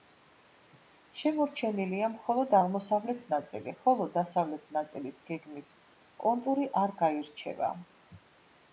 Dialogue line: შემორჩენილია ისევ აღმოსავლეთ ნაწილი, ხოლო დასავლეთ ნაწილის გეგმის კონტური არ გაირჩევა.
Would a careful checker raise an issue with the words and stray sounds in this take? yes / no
yes